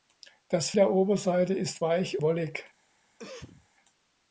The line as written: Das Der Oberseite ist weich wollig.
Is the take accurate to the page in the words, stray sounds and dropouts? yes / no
no